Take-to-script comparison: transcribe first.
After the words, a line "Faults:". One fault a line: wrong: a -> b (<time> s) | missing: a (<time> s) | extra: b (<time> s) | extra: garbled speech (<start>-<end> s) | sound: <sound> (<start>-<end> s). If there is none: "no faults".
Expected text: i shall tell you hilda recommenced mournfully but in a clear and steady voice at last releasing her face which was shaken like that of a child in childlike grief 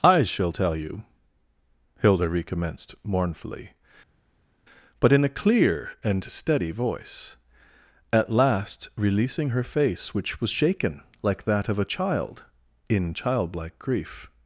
i shall tell you hilda recommenced mournfully but in a clear and steady voice at last releasing her face which was shaken like that of a child in childlike grief
Faults:
no faults